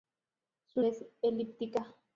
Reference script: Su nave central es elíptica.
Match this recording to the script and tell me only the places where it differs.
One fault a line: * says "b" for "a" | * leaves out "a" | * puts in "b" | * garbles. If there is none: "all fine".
* leaves out "nave central"